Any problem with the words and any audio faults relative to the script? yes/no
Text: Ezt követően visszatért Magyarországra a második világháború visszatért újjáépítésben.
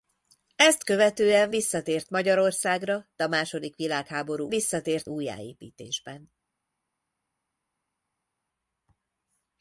no